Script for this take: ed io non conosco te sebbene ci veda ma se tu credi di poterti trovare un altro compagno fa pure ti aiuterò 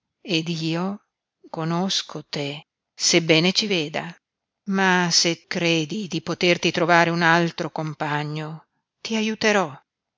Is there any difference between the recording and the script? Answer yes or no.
yes